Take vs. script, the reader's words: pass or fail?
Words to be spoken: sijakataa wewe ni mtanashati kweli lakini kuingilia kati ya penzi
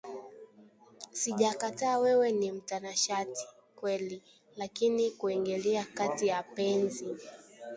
pass